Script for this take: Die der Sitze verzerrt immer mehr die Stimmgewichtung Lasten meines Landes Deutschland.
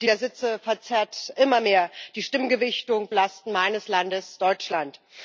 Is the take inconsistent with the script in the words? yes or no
no